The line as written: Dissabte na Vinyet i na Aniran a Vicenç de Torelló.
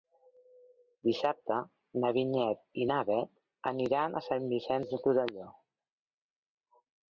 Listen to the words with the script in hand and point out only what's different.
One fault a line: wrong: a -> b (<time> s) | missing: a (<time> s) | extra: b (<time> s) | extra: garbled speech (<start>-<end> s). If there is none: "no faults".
extra: Bet (3.1 s)
extra: Sant (4.3 s)